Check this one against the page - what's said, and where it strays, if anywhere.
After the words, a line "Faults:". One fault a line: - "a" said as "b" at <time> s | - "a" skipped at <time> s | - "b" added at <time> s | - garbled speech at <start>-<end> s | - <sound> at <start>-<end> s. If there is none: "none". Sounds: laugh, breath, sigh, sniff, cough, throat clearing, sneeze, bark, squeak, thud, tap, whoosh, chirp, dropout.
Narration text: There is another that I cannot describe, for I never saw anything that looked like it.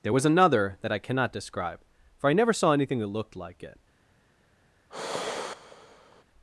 There was another that I cannot describe, for I never saw anything that looked like it.
Faults:
- "is" said as "was" at 0.1 s
- sigh at 4.9-6.2 s